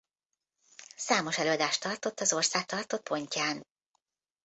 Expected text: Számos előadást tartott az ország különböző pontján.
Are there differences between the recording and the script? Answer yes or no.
yes